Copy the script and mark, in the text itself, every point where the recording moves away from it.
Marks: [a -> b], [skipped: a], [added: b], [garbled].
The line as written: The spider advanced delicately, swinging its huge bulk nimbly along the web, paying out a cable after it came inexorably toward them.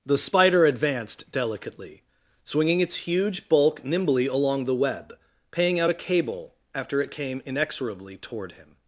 The spider advanced delicately, swinging its huge bulk nimbly along the web, paying out a cable after it came inexorably toward [them. -> him]